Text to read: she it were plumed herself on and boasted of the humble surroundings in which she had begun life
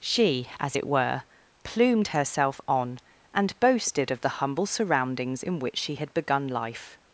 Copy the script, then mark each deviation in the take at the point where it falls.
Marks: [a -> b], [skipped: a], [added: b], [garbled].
she [added: as] it were plumed herself on and boasted of the humble surroundings in which she had begun life